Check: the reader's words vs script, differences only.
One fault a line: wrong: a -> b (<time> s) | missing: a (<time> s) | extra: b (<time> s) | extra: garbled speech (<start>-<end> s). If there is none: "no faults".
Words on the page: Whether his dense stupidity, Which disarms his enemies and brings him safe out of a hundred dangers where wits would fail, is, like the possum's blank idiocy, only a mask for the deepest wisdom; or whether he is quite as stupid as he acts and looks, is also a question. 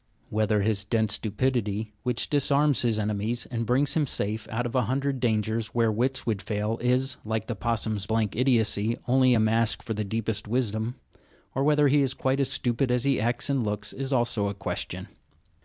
no faults